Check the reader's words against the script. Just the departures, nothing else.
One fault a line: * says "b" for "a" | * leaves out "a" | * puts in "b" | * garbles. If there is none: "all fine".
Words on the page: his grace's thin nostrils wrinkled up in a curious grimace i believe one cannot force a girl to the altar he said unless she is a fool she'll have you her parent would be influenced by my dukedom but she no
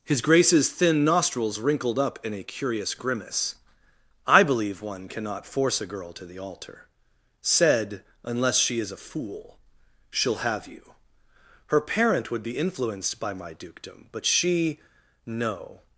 * leaves out "he"